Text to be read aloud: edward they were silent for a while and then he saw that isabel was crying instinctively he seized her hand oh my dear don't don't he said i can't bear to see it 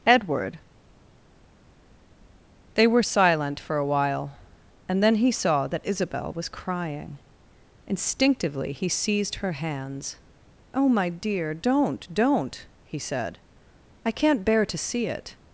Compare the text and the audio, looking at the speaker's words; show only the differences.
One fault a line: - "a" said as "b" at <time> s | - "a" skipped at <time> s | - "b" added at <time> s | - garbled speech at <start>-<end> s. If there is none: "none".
- "hand" said as "hands" at 9.5 s